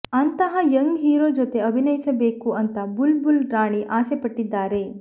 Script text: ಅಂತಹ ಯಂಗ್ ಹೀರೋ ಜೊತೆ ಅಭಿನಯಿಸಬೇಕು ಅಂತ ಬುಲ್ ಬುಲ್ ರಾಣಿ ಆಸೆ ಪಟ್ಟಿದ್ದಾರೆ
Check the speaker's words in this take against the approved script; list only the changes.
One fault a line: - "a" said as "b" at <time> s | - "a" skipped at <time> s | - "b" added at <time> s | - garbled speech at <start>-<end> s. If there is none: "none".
none